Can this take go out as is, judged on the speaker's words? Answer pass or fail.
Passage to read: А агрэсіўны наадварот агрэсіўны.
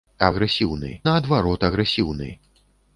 pass